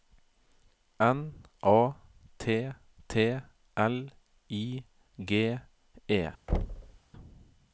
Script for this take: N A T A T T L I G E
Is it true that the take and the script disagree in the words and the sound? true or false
true